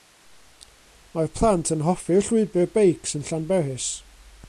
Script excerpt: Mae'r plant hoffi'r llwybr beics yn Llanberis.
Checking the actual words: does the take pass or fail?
fail